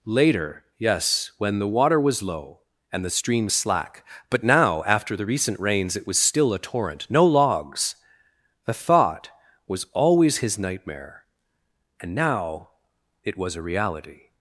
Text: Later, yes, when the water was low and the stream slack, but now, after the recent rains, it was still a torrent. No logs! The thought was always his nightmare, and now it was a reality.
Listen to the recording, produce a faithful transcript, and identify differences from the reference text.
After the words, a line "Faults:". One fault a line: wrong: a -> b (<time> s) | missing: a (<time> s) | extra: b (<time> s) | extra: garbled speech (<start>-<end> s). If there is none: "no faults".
Later, yes, when the water was low and the stream slack, but now, after the recent rains, it was still a torrent. No logs! The thought was always his nightmare, and now it was a reality.
Faults:
no faults